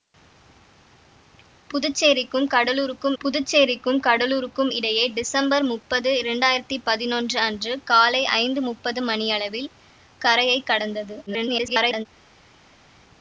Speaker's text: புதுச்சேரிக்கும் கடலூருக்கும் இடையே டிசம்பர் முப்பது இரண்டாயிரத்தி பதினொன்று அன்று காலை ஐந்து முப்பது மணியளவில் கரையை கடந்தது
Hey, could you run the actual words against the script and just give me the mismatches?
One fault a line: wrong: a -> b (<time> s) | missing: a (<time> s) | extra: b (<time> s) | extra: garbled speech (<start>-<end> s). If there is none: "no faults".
extra: புதுச்சேரிக்கும் கடலூருக்கும் (3.2 s)
extra: garbled speech (11.3-12.1 s)